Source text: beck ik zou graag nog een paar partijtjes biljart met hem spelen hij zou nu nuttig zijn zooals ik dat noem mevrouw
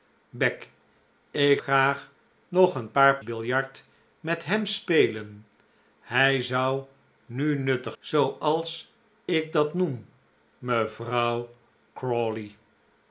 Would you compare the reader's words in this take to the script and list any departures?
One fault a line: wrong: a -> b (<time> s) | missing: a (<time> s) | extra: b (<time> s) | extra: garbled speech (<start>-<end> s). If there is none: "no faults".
missing: zou (1.6 s)
missing: partijtjes (3.2 s)
missing: zijn (8.0 s)